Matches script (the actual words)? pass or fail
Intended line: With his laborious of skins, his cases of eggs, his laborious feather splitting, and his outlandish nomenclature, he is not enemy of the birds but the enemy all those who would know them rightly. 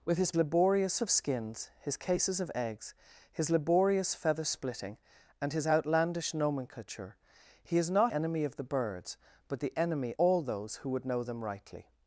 pass